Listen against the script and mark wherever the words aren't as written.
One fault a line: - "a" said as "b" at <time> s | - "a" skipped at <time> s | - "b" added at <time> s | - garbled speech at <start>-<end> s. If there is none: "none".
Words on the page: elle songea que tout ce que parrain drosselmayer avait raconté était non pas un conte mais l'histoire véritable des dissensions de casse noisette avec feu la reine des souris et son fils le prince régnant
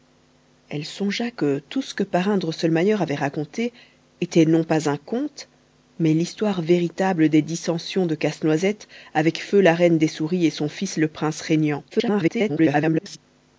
- garbled speech at 11.9-13.2 s